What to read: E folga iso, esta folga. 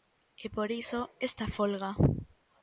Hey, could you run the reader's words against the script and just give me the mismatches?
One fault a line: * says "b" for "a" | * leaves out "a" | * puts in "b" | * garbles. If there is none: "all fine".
* says "por" for "folga"